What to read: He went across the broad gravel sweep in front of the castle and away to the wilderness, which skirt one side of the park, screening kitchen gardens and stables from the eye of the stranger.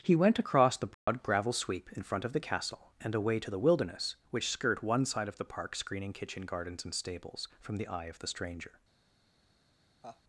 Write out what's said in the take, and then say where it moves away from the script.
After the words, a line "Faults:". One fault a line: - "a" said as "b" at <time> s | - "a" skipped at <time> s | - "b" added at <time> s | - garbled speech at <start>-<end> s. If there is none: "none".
He went across the broad gravel sweep in front of the castle and away to the wilderness, which skirt one side of the park, screening kitchen gardens and stables from the eye of the stranger.
Faults:
none